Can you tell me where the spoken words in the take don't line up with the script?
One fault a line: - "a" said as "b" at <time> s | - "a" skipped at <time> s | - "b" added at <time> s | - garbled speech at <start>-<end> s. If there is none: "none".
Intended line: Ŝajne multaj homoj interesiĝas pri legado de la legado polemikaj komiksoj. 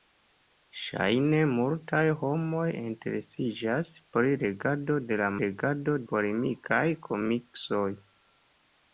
none